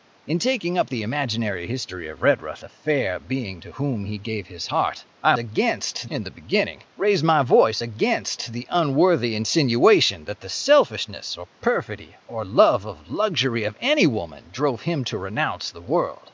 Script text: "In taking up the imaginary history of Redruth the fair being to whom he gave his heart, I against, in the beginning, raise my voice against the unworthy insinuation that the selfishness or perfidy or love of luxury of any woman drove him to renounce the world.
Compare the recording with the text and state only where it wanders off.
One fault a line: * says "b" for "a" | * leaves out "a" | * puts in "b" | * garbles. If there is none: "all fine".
all fine